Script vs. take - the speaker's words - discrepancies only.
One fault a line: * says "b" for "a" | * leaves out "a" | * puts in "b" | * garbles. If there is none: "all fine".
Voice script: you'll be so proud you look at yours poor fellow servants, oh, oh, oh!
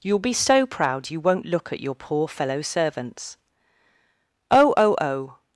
* puts in "won't"
* says "your" for "yours"